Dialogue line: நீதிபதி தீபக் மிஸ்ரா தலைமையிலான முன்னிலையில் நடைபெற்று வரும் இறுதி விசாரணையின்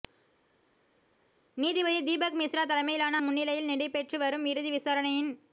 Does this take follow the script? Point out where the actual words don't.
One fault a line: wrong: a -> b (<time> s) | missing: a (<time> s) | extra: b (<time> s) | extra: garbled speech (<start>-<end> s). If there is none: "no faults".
no faults